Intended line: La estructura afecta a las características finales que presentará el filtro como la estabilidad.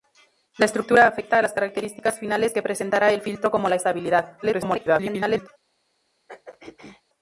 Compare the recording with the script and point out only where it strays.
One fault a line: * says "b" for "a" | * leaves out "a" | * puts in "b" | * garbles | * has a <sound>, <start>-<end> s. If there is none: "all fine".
* garbles
* has a throat clearing, 6.3-7.0 s